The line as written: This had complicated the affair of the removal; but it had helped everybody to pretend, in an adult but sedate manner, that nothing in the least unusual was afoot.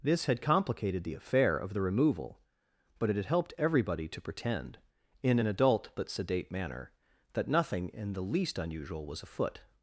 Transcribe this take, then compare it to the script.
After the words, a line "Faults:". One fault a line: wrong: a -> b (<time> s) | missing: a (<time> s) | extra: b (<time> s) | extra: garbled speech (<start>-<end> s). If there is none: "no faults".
This had complicated the affair of the removal; but it had helped everybody to pretend, in an adult but sedate manner, that nothing in the least unusual was afoot.
Faults:
no faults